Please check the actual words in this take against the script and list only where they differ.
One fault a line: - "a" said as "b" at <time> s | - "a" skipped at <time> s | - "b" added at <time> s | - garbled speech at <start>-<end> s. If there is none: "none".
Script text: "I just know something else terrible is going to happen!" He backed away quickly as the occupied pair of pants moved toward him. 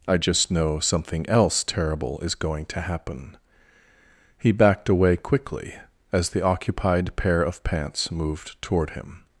none